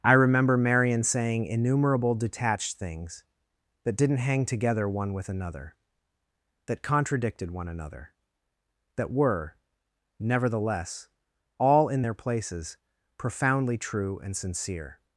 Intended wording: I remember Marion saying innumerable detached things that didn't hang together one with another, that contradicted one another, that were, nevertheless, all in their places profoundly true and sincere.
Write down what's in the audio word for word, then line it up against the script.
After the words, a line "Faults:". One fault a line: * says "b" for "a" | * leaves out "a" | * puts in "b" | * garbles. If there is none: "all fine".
I remember Marion saying innumerable detached things that didn't hang together one with another, that contradicted one another, that were, nevertheless, all in their places profoundly true and sincere.
Faults:
all fine